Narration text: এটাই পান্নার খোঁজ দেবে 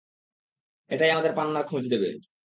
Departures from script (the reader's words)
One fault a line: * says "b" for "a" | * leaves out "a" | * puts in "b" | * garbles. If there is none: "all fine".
* puts in "আমাদের"